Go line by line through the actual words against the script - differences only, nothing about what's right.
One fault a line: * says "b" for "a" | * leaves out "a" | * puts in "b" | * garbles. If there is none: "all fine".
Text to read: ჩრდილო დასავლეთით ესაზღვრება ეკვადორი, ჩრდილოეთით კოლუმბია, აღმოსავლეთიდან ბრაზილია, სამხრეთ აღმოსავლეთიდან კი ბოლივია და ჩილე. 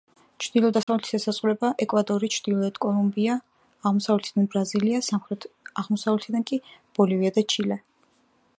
all fine